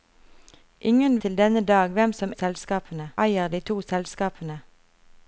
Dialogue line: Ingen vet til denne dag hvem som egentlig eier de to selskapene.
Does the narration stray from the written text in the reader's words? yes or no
yes